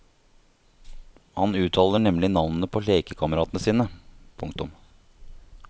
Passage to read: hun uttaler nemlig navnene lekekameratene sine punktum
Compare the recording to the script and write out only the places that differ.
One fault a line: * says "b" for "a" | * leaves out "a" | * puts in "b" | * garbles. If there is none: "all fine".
* says "han" for "hun"
* puts in "på"